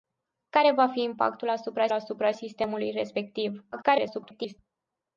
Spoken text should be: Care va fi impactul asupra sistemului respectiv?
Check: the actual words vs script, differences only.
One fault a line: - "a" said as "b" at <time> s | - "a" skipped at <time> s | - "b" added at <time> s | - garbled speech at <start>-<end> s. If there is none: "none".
- "asupra" added at 1.9 s
- garbled speech at 3.7-4.6 s